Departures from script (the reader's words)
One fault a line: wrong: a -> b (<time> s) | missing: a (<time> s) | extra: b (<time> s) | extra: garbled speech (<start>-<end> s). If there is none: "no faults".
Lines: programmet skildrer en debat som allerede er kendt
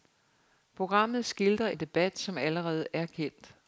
no faults